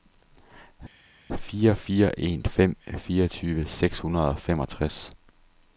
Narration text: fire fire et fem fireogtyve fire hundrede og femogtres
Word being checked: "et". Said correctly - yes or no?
no